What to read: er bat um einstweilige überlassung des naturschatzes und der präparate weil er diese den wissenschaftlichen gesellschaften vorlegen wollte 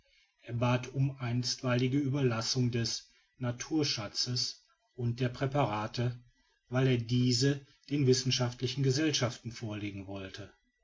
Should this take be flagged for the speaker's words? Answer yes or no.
no